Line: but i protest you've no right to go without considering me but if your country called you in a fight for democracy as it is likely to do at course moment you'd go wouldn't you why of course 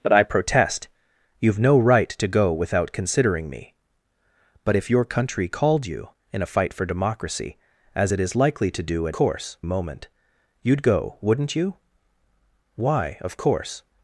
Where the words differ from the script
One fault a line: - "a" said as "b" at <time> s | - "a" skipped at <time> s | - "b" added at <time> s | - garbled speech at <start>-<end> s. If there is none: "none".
none